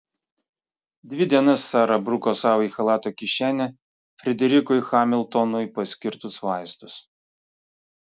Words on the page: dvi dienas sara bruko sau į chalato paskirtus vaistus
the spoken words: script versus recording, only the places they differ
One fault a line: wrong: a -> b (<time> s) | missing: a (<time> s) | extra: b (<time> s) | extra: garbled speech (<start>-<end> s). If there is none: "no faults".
extra: kišenę frederikui hamiltonui (3.2 s)